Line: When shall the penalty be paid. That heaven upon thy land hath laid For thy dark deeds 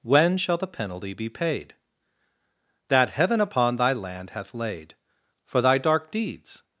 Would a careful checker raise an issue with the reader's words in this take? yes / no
no